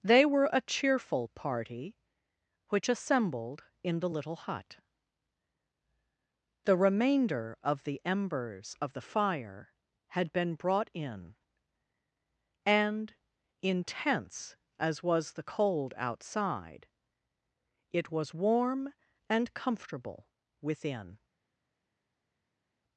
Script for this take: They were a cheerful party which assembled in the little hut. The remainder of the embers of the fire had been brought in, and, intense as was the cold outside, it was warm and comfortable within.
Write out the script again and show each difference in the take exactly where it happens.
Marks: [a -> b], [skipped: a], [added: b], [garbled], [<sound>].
They were a cheerful party which assembled in the little hut. The remainder of the embers of the fire had been brought in, and, intense as was the cold outside, it was warm and comfortable within.